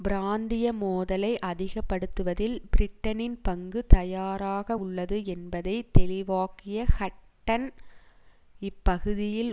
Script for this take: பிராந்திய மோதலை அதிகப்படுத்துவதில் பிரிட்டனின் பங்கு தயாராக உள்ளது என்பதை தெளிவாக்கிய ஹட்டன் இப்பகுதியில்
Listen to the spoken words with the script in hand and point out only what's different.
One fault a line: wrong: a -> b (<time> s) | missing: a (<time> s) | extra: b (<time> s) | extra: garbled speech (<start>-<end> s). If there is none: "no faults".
no faults